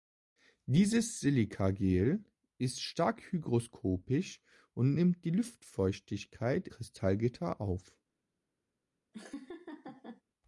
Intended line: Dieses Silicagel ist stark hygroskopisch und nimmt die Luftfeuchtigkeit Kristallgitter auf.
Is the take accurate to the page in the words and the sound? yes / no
no